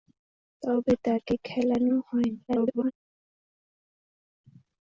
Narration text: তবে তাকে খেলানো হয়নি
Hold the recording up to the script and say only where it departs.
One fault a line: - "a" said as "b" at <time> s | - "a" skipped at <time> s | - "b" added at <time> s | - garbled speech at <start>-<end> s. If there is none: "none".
- garbled speech at 2.5-2.9 s